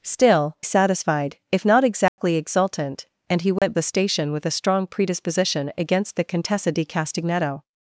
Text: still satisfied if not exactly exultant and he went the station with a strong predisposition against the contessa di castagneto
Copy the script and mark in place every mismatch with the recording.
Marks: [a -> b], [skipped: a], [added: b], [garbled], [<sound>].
still satisfied if not exactly [dropout] exultant and he went [dropout] the station with a strong predisposition against the contessa di castagneto